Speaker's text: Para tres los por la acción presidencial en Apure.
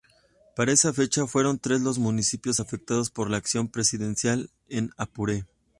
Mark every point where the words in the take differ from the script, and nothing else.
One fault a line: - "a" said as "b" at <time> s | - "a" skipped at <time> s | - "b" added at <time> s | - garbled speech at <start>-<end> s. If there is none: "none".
- "esa fecha fueron" added at 0.7 s
- "municipios afectados" added at 2.0 s